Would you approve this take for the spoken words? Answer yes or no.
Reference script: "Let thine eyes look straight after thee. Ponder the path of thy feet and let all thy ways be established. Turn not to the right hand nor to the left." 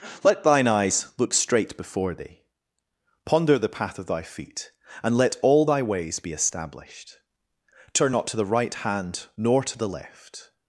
no